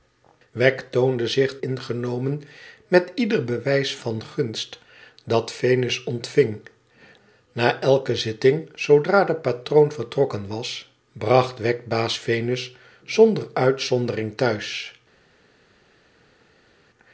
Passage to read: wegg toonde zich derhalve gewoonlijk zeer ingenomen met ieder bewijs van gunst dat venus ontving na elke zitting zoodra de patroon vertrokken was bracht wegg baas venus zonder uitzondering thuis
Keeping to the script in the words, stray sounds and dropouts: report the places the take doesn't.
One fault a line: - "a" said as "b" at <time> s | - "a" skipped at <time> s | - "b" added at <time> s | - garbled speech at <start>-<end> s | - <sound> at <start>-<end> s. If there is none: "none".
- "derhalve gewoonlijk zeer" skipped at 1.6 s